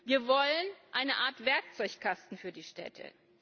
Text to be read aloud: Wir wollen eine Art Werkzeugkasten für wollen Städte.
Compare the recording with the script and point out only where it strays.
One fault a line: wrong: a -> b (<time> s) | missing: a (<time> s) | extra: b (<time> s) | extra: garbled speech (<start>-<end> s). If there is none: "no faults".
wrong: wollen -> die (2.5 s)